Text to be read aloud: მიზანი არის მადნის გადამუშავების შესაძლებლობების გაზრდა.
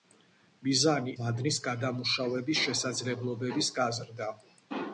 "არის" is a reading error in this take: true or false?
true